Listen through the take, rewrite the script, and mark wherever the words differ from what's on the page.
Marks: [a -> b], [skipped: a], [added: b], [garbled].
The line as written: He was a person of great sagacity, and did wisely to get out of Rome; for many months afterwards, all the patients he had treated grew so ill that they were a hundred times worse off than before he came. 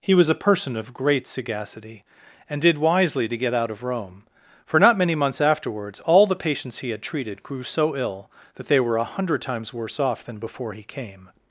He was a person of great sagacity, and did wisely to get out of Rome; for [added: not] many months afterwards, all the patients he had treated grew so ill that they were a hundred times worse off than before he came.